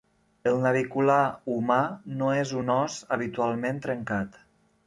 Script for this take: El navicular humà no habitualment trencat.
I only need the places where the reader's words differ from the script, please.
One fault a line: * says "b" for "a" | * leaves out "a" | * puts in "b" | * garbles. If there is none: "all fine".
* puts in "és un os"